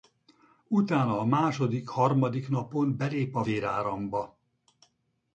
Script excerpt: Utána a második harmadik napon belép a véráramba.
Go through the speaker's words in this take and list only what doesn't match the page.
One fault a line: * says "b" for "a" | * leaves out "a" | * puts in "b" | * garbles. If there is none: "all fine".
all fine